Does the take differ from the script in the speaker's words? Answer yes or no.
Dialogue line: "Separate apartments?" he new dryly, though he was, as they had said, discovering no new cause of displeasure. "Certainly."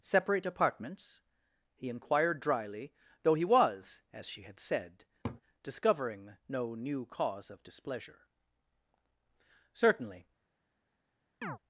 yes